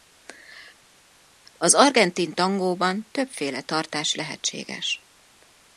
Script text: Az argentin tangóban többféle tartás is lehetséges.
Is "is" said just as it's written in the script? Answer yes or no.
no